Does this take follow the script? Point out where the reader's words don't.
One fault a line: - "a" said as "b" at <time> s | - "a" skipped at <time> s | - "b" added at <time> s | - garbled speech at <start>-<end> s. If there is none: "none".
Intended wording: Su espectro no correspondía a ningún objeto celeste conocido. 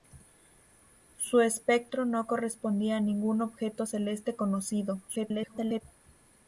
- garbled speech at 5.1-5.8 s